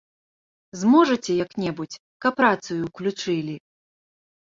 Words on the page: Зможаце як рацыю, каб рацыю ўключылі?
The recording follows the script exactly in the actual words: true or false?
false